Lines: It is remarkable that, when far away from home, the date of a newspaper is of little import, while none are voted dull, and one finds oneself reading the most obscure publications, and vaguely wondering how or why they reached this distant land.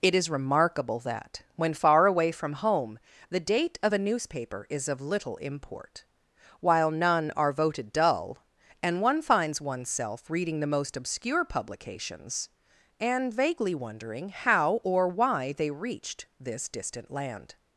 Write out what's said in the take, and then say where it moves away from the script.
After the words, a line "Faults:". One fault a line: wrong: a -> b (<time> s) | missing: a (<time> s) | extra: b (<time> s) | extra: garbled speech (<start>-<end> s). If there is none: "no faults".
It is remarkable that, when far away from home, the date of a newspaper is of little import, while none are voted dull, and one finds oneself reading the most obscure publications, and vaguely wondering how or why they reached this distant land.
Faults:
no faults